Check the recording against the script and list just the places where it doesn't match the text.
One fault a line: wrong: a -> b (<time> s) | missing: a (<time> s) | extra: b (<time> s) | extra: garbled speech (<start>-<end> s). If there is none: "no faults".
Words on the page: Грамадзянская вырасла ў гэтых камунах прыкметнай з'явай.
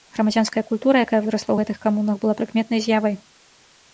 extra: культура якая (0.7 s)
extra: была (2.2 s)